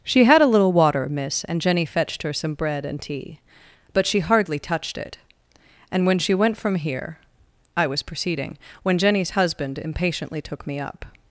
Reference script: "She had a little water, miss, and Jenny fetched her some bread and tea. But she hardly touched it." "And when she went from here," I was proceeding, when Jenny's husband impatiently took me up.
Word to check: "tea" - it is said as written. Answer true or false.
true